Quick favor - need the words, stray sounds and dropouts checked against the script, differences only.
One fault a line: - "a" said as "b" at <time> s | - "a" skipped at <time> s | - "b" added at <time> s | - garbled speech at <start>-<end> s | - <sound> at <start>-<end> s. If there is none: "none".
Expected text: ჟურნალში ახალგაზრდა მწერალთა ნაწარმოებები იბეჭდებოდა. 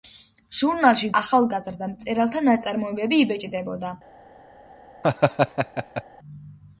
- laugh at 5.0-6.0 s